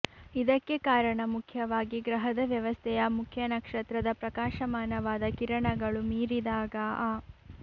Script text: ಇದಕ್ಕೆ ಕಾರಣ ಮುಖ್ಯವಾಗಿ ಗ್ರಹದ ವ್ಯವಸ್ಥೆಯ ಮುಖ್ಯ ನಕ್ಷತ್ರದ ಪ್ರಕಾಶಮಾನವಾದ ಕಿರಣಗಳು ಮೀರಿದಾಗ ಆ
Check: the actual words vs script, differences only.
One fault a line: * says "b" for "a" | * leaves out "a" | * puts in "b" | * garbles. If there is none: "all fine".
all fine